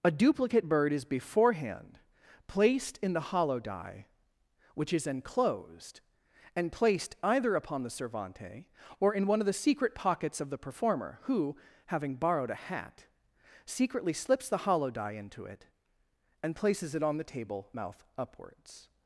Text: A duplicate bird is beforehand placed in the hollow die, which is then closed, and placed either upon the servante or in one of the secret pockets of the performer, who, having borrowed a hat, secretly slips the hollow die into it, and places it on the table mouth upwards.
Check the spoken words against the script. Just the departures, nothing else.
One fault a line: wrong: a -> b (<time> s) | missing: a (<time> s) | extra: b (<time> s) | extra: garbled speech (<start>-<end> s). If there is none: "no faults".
wrong: then closed -> enclosed (5.1 s)